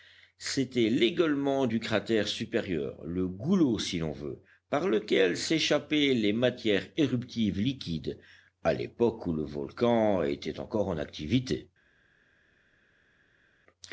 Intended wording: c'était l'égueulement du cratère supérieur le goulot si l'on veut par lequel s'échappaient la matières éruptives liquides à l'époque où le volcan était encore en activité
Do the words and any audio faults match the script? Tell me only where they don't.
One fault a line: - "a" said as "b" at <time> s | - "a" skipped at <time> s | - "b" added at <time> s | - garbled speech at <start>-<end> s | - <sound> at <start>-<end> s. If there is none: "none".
- "la" said as "les" at 6.1 s